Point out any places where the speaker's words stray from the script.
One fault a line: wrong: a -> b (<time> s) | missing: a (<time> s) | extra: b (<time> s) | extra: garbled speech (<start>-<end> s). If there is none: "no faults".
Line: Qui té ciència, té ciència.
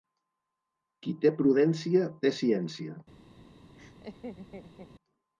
wrong: ciència -> prudència (1.4 s)